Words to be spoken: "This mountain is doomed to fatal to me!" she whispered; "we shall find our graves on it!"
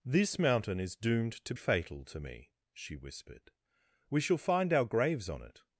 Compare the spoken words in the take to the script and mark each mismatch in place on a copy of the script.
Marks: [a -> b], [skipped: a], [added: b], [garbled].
"This mountain is doomed to fatal to me!" she whispered; "we shall find our graves on it!"